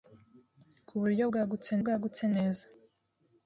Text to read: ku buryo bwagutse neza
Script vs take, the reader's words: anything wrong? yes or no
yes